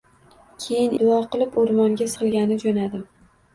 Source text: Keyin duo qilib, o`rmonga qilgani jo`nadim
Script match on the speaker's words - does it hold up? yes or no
yes